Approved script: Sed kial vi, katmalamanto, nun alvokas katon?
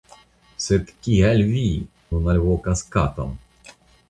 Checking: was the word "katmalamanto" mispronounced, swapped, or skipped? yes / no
yes